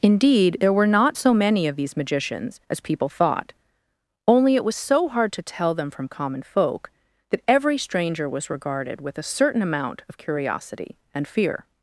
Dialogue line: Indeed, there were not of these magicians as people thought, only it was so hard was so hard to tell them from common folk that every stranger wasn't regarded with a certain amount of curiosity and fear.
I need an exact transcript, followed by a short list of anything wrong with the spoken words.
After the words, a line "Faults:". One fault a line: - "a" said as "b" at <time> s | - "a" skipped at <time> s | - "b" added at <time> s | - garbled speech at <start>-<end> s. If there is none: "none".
Indeed, there were not so many of these magicians as people thought, only it was so hard to tell them from common folk that every stranger was regarded with a certain amount of curiosity and fear.
Faults:
- "so many" added at 1.2 s
- "was so hard" skipped at 5.3 s
- "wasn't" said as "was" at 8.3 s